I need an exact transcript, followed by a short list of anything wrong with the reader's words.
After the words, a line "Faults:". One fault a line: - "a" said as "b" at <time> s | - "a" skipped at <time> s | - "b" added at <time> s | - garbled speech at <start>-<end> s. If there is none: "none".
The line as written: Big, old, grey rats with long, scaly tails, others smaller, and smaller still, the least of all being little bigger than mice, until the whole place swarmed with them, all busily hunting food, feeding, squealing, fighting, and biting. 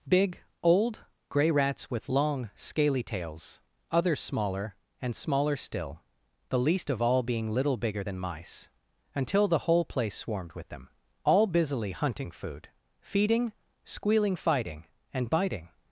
Big, old, grey rats with long, scaly tails, others smaller, and smaller still, the least of all being little bigger than mice, until the whole place swarmed with them, all busily hunting food, feeding, squealing, fighting, and biting.
Faults:
none